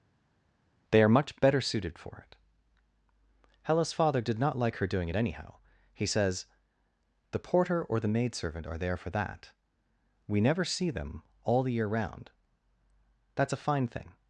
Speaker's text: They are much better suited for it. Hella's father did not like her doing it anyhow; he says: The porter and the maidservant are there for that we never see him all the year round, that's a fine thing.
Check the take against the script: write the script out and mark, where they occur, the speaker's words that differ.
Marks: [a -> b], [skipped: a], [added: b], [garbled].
They are much better suited for it. Hella's father did not like her doing it anyhow; he says: The porter [and -> or] the maidservant are there for that we never see [him -> them] all the year round, that's a fine thing.